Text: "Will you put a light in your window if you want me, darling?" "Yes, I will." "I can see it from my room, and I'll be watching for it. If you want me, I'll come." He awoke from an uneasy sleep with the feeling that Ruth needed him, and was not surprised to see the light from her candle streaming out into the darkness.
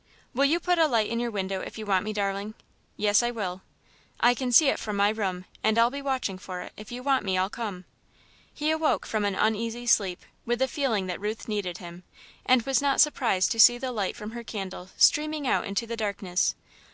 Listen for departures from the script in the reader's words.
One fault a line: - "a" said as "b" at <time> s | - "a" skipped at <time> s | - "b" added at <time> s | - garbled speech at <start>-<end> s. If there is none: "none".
none